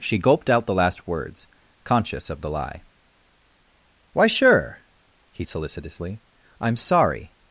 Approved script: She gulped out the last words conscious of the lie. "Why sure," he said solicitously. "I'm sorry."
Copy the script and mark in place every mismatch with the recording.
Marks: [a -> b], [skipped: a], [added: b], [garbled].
She gulped out the last words conscious of the lie. "Why sure," he [skipped: said] solicitously. "I'm sorry."